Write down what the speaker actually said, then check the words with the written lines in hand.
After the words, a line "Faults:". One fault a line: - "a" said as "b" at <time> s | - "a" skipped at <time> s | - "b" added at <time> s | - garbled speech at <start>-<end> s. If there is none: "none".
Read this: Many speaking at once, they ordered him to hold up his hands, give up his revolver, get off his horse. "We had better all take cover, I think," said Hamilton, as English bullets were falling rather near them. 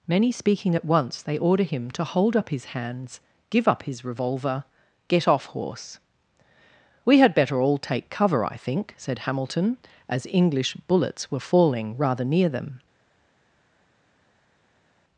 Many speaking at once, they order him to hold up his hands, give up his revolver, get off horse. "We had better all take cover, I think," said Hamilton, as English bullets were falling rather near them.
Faults:
- "ordered" said as "order" at 1.4 s
- "his" skipped at 5.5 s